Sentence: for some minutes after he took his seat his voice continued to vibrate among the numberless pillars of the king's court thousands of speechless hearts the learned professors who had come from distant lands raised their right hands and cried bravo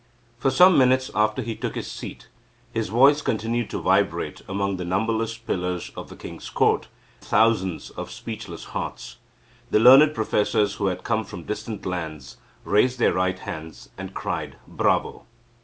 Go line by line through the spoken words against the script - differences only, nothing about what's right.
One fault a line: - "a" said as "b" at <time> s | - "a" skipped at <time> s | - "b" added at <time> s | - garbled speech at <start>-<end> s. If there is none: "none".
none